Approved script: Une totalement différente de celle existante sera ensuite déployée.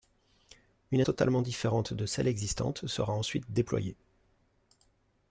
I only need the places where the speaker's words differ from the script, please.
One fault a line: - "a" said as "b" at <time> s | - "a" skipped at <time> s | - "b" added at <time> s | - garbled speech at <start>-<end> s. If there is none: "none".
none